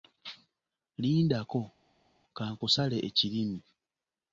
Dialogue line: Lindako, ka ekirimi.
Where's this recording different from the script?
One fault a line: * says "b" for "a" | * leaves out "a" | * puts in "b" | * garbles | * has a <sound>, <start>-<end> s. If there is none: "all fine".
* puts in "nkusale"